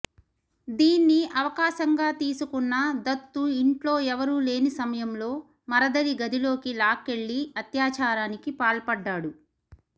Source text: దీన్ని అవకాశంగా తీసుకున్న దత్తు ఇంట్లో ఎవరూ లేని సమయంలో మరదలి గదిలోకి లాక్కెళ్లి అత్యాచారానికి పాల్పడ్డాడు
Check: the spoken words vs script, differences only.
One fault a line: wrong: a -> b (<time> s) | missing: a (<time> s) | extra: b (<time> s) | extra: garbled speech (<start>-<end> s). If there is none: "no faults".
no faults